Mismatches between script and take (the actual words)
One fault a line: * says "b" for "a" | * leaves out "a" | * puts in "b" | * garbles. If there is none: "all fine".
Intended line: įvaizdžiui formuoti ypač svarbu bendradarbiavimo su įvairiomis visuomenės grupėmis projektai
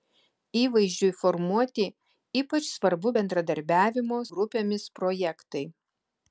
* leaves out "su įvairiomis visuomenės"